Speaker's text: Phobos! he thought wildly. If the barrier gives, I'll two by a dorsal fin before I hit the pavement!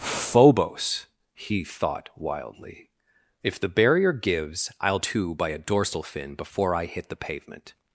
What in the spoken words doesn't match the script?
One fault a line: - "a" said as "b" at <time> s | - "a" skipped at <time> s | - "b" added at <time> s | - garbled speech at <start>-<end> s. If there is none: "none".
none